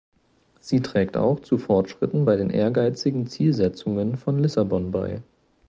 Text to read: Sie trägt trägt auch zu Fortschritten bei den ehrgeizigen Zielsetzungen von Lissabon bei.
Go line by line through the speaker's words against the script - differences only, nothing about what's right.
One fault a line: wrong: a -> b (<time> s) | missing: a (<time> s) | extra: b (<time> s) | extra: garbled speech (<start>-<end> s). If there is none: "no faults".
missing: trägt (1.1 s)